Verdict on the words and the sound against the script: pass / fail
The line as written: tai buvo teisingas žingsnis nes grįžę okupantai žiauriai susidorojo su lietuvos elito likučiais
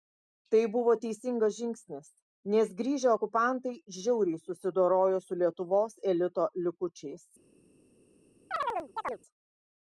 fail